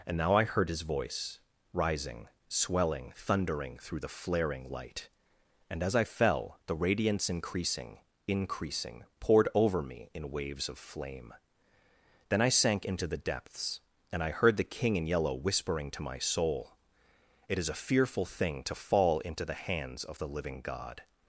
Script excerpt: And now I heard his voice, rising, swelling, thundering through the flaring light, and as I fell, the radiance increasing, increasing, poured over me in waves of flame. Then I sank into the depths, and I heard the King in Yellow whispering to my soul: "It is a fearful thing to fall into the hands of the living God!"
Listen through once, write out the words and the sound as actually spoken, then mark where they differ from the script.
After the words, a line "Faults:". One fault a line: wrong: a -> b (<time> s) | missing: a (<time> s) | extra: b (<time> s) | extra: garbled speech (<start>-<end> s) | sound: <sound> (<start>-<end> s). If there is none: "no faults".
And now I heard his voice, rising, swelling, thundering through the flaring light, and as I fell, the radiance increasing, increasing, poured over me in waves of flame. Then I sank into the depths, and I heard the King in Yellow whispering to my soul: "It is a fearful thing to fall into the hands of the living God!"
Faults:
no faults